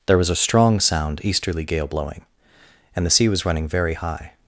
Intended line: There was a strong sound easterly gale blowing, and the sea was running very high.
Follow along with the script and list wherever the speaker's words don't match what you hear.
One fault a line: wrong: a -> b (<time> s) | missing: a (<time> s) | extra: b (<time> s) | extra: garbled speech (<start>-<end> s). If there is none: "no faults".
no faults